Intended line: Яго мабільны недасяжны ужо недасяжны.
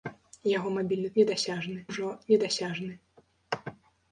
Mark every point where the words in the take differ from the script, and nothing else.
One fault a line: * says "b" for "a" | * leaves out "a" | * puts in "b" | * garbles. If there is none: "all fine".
all fine